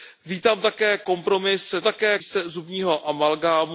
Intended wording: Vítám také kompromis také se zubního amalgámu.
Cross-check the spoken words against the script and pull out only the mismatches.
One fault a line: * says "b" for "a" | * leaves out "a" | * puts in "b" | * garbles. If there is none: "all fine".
all fine